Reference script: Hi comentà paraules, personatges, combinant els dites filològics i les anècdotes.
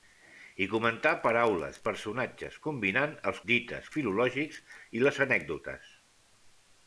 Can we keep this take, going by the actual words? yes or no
yes